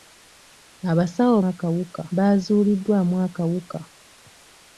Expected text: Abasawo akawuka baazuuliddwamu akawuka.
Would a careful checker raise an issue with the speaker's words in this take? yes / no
no